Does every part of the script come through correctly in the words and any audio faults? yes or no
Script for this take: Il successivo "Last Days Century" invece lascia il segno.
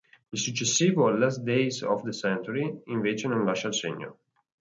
no